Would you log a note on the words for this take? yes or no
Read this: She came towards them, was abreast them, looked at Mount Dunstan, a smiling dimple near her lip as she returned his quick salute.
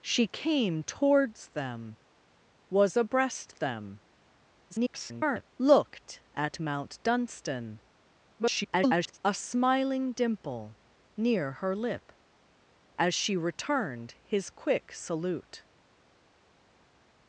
yes